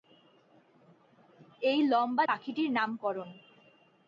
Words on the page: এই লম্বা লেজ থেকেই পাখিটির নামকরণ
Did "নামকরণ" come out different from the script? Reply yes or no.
no